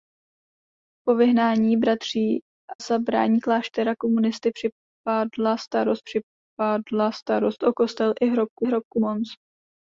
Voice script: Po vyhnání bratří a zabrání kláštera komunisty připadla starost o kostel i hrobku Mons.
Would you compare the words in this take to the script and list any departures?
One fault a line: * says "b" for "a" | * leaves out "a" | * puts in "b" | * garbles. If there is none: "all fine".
* leaves out "a"
* puts in "připadla starost"
* puts in "hrobku"